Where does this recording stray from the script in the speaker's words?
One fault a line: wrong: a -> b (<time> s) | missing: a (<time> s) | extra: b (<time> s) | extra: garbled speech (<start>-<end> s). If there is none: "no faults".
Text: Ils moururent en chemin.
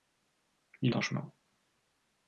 missing: moururent (0.9 s)